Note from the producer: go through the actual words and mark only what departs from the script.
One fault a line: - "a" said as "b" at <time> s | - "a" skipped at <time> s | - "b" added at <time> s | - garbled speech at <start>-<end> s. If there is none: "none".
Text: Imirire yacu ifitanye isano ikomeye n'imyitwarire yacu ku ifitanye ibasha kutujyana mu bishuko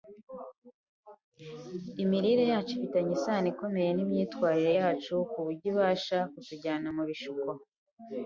- "ifitanye" said as "buryo" at 5.4 s